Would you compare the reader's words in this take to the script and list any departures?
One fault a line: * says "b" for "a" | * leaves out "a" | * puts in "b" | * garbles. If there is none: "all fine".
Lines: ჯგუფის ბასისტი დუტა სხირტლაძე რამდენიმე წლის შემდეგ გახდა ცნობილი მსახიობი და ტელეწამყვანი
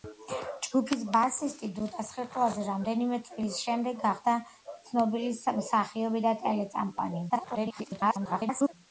* garbles